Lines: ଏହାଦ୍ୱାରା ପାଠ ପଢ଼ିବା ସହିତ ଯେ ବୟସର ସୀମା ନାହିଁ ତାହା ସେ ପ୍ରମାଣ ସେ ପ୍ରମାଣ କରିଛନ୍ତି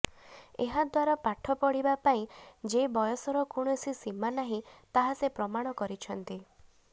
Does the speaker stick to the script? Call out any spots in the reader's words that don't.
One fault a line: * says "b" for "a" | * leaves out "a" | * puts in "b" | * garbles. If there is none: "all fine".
* says "ପାଇଁ" for "ସହିତ"
* puts in "କୌଣସି"
* leaves out "ସେ ପ୍ରମାଣ"